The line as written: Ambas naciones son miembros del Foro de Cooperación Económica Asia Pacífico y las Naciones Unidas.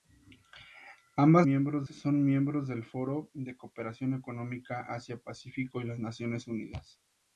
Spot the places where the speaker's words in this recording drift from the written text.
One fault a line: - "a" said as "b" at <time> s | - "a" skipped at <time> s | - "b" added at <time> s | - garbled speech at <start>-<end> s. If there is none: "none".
- "naciones" said as "miembros" at 1.4 s